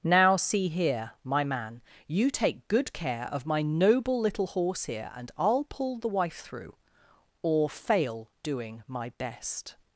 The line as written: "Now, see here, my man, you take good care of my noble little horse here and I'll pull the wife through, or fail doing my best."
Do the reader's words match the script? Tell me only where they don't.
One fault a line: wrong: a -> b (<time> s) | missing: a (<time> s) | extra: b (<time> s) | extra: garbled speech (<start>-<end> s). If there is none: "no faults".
no faults